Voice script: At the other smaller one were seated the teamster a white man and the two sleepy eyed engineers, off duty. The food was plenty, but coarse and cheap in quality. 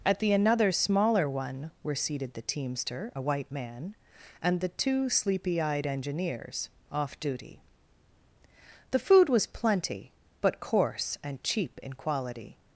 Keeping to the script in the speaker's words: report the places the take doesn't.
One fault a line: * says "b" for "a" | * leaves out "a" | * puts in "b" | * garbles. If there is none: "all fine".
* says "another" for "other"